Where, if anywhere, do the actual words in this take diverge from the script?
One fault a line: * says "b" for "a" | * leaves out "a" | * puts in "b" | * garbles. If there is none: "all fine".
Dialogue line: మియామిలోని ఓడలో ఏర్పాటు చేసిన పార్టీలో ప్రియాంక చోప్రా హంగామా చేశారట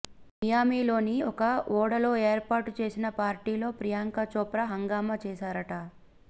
* puts in "ఒక"